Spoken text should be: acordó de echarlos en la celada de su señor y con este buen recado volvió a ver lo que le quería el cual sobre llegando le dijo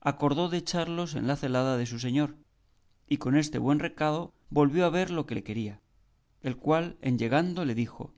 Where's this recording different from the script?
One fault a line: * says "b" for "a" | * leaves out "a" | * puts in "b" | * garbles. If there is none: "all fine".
* says "en" for "sobre"